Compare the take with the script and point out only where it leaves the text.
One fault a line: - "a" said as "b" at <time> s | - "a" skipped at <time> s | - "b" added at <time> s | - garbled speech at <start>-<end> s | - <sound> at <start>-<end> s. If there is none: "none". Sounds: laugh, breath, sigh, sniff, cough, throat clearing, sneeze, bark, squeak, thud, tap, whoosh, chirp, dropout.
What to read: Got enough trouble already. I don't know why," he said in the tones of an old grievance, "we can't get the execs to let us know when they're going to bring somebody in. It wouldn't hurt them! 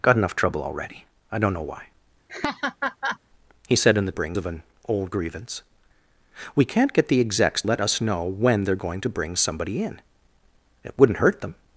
- laugh at 2.3-3.2 s
- "tones" said as "bring" at 4.1 s
- "to" skipped at 7.6 s